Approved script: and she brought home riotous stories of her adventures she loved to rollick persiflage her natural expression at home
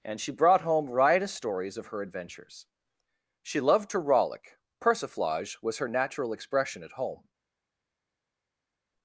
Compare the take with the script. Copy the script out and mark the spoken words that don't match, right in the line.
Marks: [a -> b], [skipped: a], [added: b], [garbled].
and she brought home riotous stories of her adventures she loved to rollick persiflage [added: was] her natural expression at home